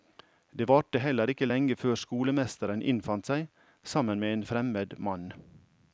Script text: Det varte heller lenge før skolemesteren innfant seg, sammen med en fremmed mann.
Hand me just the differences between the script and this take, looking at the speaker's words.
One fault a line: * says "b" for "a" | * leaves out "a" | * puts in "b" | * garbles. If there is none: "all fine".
* puts in "ikke"